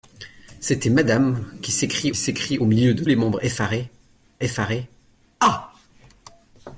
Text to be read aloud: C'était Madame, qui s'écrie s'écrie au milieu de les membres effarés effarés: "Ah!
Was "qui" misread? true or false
false